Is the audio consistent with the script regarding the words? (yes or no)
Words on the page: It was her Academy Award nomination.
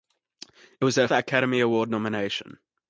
yes